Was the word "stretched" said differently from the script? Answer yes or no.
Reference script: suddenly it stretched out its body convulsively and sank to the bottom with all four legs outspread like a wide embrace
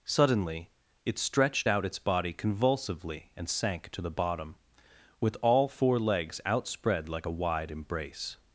no